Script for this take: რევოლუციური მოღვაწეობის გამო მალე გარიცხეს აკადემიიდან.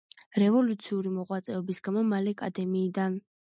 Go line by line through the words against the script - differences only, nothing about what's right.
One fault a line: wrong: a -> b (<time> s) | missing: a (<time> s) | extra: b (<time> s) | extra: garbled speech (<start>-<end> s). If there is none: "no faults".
missing: გარიცხეს (2.4 s)